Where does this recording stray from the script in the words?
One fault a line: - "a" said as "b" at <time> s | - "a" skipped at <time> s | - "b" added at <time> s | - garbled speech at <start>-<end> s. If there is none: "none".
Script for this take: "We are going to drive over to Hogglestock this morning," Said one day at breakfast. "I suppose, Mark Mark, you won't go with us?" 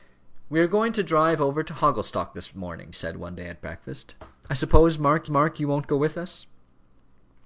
none